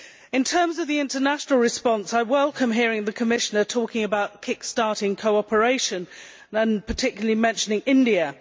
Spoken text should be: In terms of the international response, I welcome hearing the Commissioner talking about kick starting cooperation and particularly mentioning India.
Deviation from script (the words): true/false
false